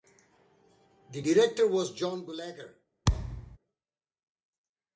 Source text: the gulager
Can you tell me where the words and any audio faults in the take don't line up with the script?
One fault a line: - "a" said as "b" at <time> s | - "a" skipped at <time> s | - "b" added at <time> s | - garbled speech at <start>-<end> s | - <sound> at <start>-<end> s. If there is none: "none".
- "director was john" added at 1.2 s
- thud at 3.1-3.6 s